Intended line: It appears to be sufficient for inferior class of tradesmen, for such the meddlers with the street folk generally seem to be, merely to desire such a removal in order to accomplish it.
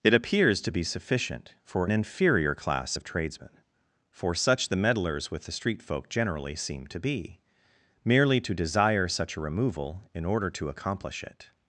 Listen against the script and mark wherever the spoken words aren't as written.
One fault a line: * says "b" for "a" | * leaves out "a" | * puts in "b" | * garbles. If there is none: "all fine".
all fine